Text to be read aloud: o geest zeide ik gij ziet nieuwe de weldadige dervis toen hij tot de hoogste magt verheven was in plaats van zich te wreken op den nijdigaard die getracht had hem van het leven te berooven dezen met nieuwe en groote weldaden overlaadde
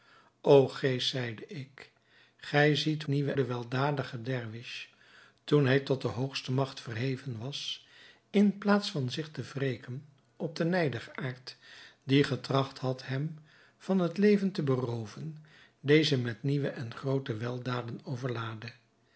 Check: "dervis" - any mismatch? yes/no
no